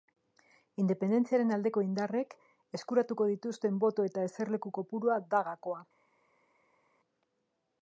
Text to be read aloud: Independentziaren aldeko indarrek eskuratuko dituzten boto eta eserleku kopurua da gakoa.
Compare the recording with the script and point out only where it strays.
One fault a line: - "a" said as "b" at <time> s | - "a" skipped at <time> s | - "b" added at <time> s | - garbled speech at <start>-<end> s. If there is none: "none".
none